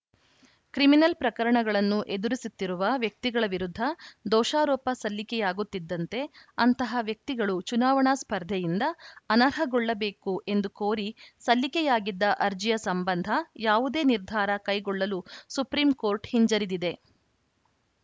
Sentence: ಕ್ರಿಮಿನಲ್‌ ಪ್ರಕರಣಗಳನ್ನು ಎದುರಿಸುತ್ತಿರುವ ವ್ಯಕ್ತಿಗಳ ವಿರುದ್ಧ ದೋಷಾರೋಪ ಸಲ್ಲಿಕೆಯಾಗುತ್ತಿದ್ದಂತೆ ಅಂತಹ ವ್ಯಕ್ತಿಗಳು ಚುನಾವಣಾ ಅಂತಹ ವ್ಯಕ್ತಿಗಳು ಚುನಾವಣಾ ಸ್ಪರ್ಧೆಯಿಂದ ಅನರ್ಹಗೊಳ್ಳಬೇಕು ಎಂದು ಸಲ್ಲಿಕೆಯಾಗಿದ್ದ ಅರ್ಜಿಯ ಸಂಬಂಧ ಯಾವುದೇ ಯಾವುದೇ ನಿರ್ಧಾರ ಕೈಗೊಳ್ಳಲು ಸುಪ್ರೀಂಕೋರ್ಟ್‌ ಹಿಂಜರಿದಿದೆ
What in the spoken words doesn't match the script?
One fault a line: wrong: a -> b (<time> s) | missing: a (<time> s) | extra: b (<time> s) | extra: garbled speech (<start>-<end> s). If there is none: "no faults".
missing: ಅಂತಹ ವ್ಯಕ್ತಿಗಳು ಚುನಾವಣಾ (8.1 s)
extra: ಕೋರಿ (10.8 s)
missing: ಯಾವುದೇ (14.0 s)